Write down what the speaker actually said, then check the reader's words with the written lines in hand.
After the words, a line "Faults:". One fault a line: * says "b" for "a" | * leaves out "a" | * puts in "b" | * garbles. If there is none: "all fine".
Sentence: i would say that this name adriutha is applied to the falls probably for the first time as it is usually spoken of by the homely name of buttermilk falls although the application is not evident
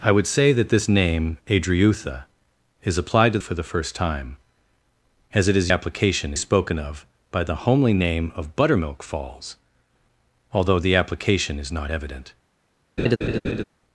i would say that this name adriutha is applied to for the first time as it is application spoken of by the homely name of buttermilk falls although the application is not evident
Faults:
* leaves out "the falls probably"
* says "application" for "usually"